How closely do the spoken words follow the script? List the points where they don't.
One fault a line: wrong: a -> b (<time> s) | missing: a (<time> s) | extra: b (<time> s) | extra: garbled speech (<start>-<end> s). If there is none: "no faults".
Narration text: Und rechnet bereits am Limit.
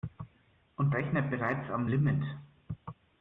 no faults